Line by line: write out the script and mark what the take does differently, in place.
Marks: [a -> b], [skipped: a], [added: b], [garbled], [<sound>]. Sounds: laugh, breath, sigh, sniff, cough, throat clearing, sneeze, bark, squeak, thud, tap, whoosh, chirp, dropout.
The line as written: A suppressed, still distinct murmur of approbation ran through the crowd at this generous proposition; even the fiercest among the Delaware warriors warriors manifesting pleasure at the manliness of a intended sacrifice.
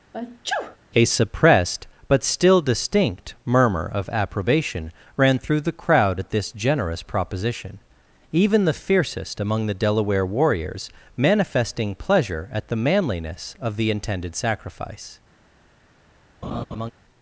[sneeze] A suppressed, [added: but] still distinct murmur of approbation ran through the crowd at this generous proposition; even the fiercest among the Delaware warriors [skipped: warriors] manifesting pleasure at the manliness of [a -> the] intended sacrifice. [laugh]